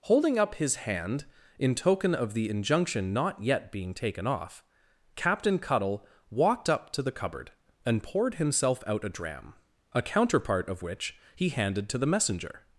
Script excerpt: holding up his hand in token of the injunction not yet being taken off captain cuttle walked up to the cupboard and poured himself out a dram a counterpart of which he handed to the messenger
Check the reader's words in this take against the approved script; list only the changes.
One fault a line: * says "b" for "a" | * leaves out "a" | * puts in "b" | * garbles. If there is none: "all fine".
all fine